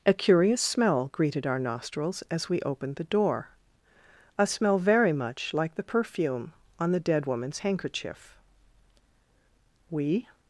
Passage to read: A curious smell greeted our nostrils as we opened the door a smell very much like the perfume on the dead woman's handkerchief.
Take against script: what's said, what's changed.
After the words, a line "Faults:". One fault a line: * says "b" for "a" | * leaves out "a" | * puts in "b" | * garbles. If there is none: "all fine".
A curious smell greeted our nostrils as we opened the door a smell very much like the perfume on the dead woman's handkerchief. We
Faults:
* puts in "We"